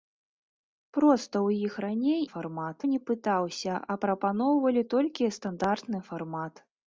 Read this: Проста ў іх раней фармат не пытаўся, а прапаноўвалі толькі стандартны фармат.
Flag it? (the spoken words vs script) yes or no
no